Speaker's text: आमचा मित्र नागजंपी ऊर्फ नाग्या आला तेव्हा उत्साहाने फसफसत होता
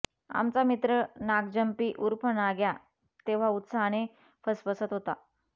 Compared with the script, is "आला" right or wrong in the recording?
wrong